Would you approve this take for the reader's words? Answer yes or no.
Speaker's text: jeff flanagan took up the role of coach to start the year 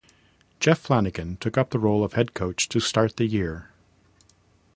no